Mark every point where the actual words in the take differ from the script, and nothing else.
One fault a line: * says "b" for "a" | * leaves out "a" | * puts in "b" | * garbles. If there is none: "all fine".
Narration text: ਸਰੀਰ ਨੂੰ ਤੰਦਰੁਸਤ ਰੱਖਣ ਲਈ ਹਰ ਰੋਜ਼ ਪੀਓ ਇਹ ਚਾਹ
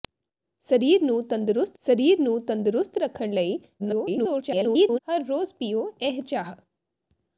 * puts in "ਸਰੀਰ ਨੂੰ ਤੰਦਰੁਸਤ"
* garbles